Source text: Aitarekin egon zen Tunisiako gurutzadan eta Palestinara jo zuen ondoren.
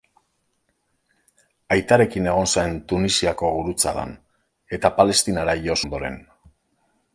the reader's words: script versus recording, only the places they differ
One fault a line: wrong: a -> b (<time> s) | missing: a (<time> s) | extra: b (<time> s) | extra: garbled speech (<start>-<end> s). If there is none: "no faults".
missing: zuen (5.8 s)